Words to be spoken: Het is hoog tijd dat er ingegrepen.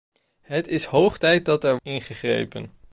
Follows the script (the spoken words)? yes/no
yes